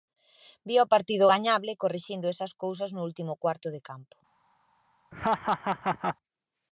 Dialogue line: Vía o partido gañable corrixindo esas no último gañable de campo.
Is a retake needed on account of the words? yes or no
yes